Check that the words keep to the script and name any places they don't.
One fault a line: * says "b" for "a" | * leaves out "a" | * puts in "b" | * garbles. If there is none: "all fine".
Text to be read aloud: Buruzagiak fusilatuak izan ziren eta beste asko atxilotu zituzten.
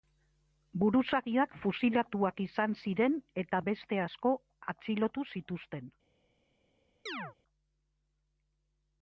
all fine